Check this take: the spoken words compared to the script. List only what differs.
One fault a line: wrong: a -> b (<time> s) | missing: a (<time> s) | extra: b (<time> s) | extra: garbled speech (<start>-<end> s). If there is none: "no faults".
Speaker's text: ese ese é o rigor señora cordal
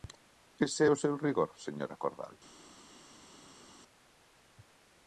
missing: ese (0.8 s)
extra: seu (1.0 s)